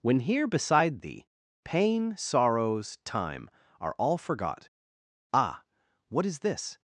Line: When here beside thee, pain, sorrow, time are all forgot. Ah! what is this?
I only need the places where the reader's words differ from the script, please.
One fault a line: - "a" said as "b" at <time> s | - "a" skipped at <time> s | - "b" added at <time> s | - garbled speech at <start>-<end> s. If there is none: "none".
- "sorrow" said as "sorrows" at 2.2 s